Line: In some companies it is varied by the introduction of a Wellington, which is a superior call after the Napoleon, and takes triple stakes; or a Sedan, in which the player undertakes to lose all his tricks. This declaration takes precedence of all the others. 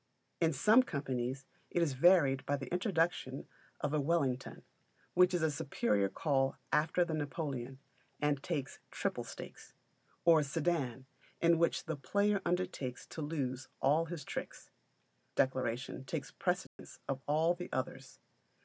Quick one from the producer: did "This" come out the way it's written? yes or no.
no